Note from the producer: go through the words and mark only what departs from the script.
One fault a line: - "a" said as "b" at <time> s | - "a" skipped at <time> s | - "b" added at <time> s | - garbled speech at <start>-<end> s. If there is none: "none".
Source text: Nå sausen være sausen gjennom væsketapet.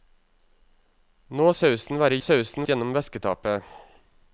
none